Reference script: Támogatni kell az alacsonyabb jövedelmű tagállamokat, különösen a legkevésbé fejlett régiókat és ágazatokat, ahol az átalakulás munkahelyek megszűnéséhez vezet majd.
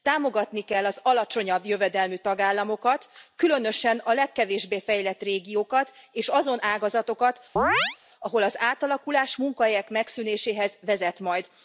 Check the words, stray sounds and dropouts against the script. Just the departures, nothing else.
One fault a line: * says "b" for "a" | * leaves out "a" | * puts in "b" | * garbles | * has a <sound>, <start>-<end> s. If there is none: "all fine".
* puts in "azon"
* has a chirp, 7.6-8.0 s